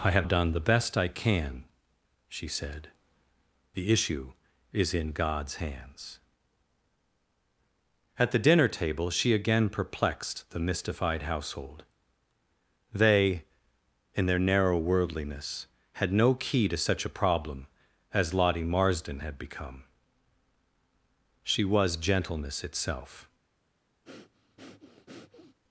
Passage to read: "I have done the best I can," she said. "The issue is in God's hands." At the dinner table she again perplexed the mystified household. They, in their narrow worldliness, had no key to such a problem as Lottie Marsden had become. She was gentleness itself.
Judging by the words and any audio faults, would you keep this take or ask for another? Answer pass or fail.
fail